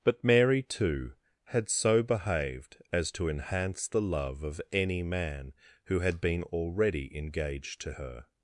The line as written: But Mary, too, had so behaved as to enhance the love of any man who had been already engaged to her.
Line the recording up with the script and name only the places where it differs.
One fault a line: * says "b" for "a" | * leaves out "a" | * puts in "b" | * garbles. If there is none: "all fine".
all fine